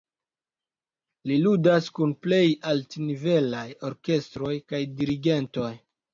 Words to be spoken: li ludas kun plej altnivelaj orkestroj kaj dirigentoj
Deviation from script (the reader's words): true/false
false